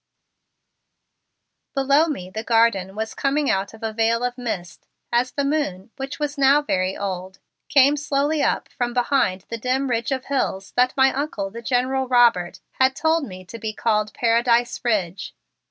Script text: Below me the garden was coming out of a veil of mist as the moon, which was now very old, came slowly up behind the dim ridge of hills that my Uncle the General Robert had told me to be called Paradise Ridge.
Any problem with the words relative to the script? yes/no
yes